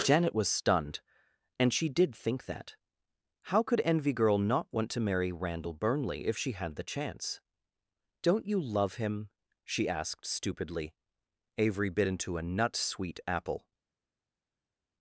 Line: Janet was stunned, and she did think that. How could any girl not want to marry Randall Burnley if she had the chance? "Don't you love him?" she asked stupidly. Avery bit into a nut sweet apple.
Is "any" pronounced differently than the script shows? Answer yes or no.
yes